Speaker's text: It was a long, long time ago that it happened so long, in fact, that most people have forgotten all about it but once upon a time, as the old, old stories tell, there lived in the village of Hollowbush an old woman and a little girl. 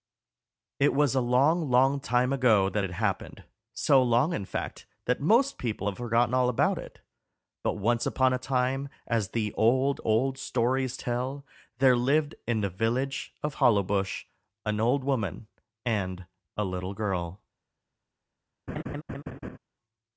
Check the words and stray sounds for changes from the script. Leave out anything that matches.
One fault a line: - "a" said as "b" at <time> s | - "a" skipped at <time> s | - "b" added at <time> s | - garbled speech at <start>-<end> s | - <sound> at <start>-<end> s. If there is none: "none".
- laugh at 18.7-19.6 s